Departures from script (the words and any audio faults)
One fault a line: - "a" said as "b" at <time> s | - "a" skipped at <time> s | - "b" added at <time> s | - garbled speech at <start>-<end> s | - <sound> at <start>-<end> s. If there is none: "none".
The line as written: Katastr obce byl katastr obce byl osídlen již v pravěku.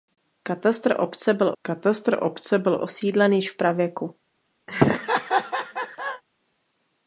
- laugh at 4.7-6.2 s